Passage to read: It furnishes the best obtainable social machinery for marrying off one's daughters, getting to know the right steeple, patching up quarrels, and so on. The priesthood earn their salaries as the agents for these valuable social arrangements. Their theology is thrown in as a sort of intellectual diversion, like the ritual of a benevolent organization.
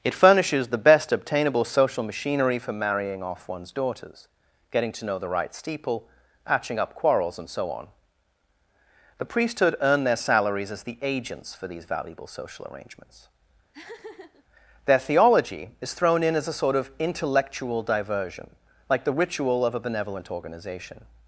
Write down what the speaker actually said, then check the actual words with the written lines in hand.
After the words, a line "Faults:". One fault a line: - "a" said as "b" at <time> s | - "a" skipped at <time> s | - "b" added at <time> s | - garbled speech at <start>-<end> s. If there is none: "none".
It furnishes the best obtainable social machinery for marrying off one's daughters, getting to know the right steeple, patching up quarrels, and so on. The priesthood earn their salaries as the agents for these valuable social arrangements. Their theology is thrown in as a sort of intellectual diversion, like the ritual of a benevolent organization.
Faults:
none